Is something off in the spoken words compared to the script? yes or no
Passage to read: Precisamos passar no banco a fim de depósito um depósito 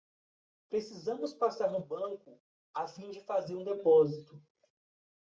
yes